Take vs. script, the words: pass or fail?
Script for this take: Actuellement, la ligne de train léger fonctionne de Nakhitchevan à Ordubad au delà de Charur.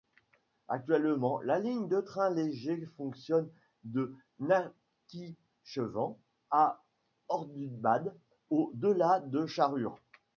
pass